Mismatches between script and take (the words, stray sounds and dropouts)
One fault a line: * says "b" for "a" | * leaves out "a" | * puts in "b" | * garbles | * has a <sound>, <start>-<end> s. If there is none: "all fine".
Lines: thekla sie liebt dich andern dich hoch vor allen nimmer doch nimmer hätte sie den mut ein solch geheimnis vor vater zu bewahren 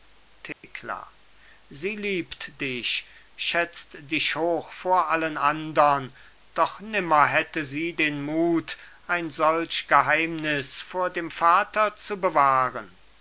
* has a dropout, 0.5-0.6 s
* says "schätzt" for "andern"
* says "andern" for "nimmer"
* puts in "dem"